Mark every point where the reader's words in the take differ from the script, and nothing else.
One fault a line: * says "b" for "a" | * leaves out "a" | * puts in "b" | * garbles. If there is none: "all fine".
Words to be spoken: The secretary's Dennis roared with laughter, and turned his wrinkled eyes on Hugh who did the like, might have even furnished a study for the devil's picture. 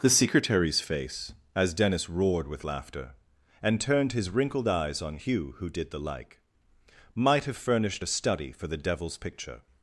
* puts in "face as"
* leaves out "even"